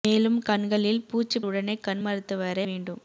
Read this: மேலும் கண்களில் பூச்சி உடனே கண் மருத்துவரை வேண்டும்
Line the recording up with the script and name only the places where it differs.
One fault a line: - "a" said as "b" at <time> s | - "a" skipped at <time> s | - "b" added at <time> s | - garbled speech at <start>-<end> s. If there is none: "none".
none